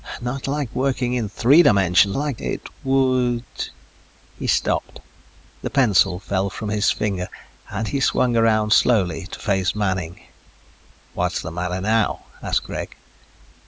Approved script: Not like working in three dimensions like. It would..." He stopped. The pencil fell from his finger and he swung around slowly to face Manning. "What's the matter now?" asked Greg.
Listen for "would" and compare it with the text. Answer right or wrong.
right